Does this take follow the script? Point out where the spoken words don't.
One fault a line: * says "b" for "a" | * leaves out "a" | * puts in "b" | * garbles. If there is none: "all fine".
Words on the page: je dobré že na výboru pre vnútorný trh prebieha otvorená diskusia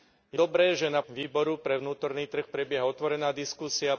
all fine